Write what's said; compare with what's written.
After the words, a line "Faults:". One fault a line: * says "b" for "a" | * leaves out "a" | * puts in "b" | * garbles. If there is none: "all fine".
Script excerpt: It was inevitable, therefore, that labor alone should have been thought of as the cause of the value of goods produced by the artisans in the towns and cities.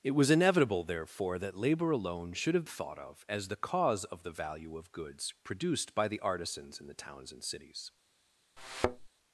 It was inevitable, therefore, that labor alone should have thought of as the cause of the value of goods produced by the artisans in the towns and cities.
Faults:
* leaves out "been"